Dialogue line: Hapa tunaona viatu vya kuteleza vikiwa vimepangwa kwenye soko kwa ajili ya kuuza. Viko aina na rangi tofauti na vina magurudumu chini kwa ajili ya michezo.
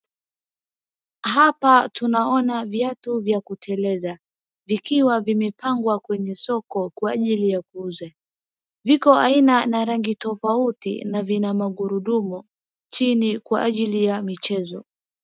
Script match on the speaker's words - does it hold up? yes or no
yes